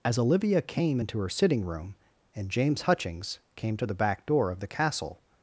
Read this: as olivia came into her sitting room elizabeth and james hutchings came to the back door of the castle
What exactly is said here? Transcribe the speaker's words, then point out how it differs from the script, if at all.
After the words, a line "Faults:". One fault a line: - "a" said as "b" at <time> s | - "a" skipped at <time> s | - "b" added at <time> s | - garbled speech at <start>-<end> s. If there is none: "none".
as olivia came into her sitting room and james hutchings came to the back door of the castle
Faults:
- "elizabeth" skipped at 1.9 s